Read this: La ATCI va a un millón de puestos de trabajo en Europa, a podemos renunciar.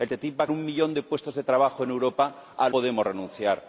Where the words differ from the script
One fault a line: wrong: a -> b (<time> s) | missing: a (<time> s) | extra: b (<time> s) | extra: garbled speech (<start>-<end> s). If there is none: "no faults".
no faults